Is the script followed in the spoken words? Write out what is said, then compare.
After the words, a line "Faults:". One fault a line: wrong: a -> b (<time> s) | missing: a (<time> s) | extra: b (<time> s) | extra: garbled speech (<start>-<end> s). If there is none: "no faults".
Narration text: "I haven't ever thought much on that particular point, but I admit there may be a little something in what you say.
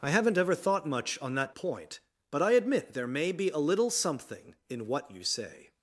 "I haven't ever thought much on that point, but I admit there may be a little something in what you say.
Faults:
missing: particular (1.5 s)